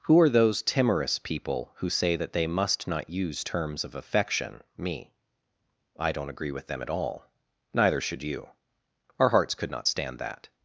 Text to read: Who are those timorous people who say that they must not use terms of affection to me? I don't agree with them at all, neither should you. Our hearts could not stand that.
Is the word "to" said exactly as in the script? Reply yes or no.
no